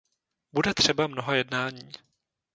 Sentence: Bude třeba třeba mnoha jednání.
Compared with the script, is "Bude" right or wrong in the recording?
right